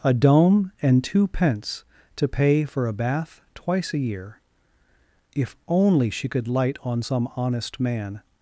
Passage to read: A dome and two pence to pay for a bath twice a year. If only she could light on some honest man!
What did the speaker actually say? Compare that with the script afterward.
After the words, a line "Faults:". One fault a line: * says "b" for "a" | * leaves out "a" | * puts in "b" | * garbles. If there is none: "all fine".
A dome and two pence to pay for a bath twice a year. If only she could light on some honest man!
Faults:
all fine